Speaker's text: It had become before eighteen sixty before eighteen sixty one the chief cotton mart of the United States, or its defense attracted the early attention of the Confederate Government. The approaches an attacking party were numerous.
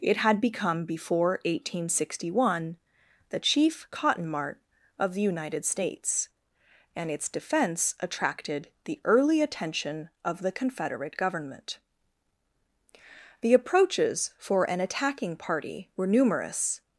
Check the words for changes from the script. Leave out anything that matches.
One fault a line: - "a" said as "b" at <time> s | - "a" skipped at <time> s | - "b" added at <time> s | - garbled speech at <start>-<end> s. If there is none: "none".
- "before eighteen sixty" skipped at 2.4 s
- "or" said as "and" at 6.9 s
- "for" added at 14.4 s